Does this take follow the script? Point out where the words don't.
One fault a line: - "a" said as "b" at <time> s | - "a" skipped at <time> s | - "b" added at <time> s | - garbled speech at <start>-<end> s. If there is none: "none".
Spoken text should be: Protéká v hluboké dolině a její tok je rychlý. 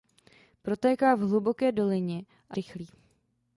- "její tok je" skipped at 2.6 s